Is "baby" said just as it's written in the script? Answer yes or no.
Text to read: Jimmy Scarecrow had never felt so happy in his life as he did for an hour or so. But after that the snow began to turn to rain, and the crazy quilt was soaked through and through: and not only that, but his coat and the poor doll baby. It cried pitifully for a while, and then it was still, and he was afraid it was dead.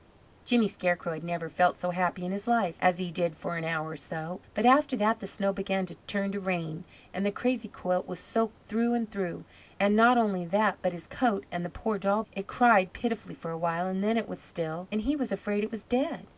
no